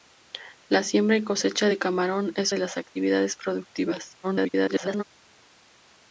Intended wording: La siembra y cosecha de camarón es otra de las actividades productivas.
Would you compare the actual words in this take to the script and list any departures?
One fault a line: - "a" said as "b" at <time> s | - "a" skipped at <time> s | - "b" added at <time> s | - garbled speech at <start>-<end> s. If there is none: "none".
- "otra" skipped at 2.5 s
- garbled speech at 4.2-5.0 s